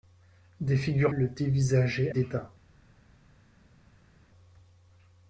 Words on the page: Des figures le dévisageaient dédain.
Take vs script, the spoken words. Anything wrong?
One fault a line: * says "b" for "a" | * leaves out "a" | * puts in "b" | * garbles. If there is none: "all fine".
all fine